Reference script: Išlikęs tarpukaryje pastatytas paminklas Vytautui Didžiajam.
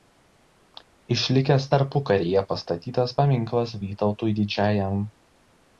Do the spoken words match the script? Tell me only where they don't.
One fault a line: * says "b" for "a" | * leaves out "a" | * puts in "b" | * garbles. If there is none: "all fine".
all fine